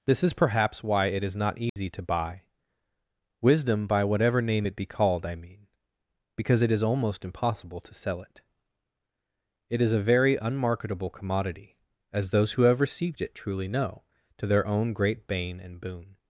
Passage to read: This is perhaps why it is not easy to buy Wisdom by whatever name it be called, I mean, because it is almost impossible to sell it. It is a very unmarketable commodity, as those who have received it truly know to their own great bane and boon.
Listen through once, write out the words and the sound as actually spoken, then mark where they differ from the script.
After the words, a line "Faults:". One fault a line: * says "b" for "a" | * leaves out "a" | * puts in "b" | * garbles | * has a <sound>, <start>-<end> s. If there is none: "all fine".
This is perhaps why it is not easy to buy Wisdom by whatever name it be called, I mean, because it is almost impossible to sell it. It is a very unmarketable commodity, as those who have received it truly know to their own great bane and boon.
Faults:
* has a dropout, 1.7-1.8 s